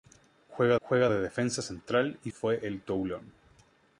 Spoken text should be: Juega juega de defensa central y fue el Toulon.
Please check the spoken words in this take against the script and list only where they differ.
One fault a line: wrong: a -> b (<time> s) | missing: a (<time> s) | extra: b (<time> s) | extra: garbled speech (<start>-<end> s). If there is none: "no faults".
no faults